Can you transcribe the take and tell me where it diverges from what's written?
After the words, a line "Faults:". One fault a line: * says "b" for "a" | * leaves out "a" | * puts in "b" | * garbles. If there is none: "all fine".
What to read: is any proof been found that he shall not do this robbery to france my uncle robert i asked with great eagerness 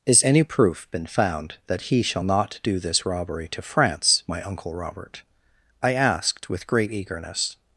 is any proof been found that he shall not do this robbery to france my uncle robert i asked with great eagerness
Faults:
all fine